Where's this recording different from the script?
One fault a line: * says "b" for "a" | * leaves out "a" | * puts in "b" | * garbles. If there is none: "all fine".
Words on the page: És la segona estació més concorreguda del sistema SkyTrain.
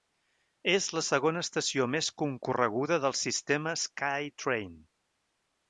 all fine